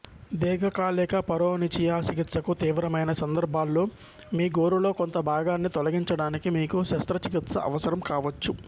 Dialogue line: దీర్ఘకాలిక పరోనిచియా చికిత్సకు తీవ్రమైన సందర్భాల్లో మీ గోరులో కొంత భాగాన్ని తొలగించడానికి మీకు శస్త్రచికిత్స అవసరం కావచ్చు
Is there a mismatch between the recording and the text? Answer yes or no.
no